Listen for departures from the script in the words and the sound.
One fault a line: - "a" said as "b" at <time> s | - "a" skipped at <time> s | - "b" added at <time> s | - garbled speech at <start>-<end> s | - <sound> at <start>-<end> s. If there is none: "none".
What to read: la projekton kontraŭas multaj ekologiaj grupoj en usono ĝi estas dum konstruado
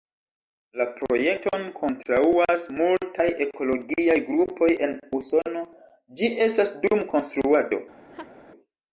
- laugh at 8.1-8.4 s